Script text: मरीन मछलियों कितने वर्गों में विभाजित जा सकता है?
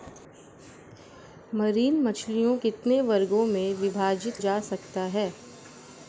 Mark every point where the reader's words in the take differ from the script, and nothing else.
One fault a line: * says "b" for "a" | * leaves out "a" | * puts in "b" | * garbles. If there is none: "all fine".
all fine